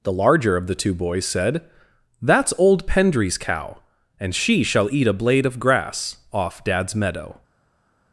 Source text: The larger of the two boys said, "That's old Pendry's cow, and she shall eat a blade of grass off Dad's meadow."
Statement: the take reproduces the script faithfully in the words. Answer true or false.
true